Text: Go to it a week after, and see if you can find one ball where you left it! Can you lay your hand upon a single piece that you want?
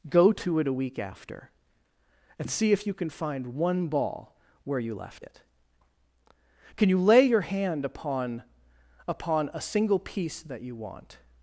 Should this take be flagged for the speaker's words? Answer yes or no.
yes